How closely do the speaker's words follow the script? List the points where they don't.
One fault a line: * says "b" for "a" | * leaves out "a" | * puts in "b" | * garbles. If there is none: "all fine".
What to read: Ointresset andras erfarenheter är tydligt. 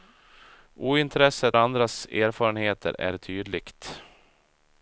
all fine